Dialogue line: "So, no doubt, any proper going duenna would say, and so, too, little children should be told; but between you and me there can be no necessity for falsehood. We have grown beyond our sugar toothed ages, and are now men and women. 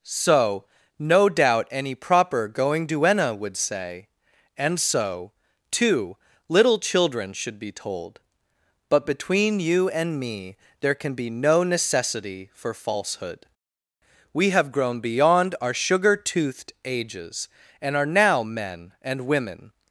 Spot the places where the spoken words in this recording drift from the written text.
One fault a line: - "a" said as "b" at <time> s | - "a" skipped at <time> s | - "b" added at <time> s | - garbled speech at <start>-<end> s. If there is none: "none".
none